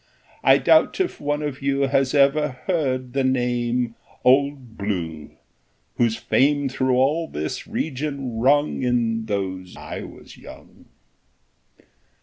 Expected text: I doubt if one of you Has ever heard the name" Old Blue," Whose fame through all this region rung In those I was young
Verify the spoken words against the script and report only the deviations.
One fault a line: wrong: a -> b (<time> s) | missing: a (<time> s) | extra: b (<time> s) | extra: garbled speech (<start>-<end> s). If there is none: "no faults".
no faults